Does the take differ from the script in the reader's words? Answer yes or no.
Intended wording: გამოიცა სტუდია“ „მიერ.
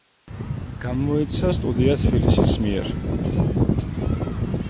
yes